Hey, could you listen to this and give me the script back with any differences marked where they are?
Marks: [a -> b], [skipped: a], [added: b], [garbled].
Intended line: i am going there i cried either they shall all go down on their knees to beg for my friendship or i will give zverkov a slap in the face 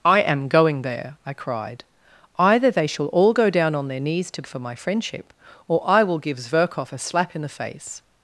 i am going there i cried either they shall all go down on their knees to [skipped: beg] for my friendship or i will give zverkov a slap in the face